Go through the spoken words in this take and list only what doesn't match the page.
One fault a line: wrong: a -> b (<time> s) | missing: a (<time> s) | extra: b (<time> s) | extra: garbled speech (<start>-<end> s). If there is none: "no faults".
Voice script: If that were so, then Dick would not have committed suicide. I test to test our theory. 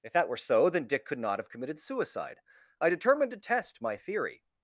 wrong: would -> could (1.1 s)
wrong: test -> determined (2.9 s)
wrong: our -> my (3.8 s)